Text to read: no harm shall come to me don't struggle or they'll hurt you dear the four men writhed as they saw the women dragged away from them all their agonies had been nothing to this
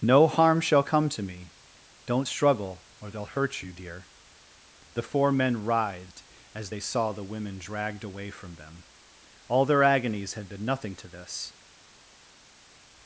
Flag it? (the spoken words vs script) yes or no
no